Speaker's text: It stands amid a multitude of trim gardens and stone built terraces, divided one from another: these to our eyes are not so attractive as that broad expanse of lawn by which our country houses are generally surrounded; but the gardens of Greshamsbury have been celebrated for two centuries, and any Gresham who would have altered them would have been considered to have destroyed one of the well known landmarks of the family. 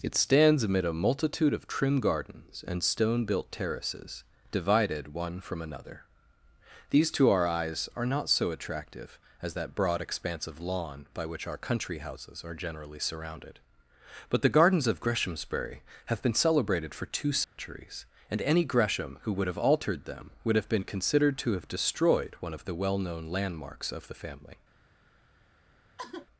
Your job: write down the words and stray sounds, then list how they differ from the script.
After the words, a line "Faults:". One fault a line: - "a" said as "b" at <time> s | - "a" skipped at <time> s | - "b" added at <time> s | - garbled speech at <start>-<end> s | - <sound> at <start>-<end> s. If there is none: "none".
It stands amid a multitude of trim gardens and stone built terraces, divided one from another: these to our eyes are not so attractive as that broad expanse of lawn by which our country houses are generally surrounded; but the gardens of Greshamsbury have been celebrated for two centuries, and any Gresham who would have altered them would have been considered to have destroyed one of the well known landmarks of the family.
Faults:
- dropout at 17.4-17.6 s
- sigh at 26.0-26.3 s